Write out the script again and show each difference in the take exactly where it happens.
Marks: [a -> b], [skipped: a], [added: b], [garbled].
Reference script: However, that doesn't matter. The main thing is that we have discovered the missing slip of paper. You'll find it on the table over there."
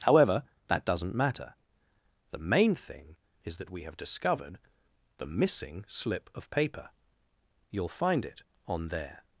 However, that doesn't matter. The main thing is that we have discovered the missing slip of paper. You'll find it on [skipped: the table over] there."